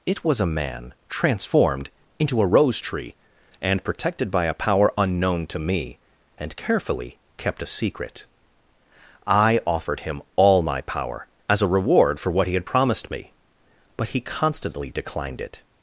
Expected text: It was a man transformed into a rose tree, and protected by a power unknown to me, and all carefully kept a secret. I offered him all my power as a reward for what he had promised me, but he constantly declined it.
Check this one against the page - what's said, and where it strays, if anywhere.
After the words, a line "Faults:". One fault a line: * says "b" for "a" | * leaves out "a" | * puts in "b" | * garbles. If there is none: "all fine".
It was a man transformed into a rose tree, and protected by a power unknown to me, and carefully kept a secret. I offered him all my power as a reward for what he had promised me, but he constantly declined it.
Faults:
* leaves out "all"